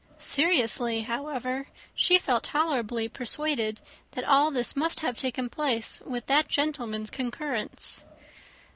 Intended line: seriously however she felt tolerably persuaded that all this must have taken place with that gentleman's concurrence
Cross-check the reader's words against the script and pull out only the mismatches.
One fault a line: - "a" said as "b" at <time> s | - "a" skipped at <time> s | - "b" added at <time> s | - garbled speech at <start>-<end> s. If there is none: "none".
none